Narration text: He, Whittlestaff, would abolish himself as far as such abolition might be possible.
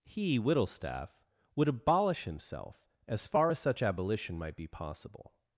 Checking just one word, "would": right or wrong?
right